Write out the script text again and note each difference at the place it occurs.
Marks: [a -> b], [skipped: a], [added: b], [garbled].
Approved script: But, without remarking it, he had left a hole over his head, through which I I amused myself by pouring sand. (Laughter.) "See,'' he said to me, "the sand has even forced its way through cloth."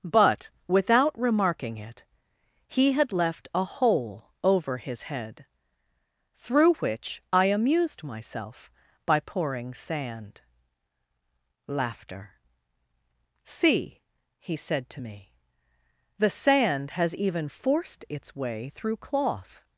But, without remarking it, he had left a hole over his head, through which I [skipped: I] amused myself by pouring sand. (Laughter.) "See,'' he said to me, "the sand has even forced its way through cloth."